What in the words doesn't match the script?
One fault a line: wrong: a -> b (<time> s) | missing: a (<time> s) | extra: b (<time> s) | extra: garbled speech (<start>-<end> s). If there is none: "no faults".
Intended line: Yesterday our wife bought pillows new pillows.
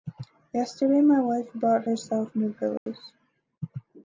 wrong: our -> my (1.0 s)
wrong: pillows -> herself (1.8 s)